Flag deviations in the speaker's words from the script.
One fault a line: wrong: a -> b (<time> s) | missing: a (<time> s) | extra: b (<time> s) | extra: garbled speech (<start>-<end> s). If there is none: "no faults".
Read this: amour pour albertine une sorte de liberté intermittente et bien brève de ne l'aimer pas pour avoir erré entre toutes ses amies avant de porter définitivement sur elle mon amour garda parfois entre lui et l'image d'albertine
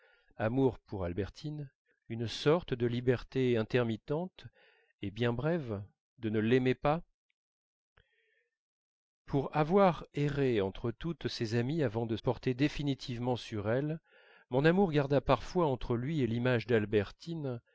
no faults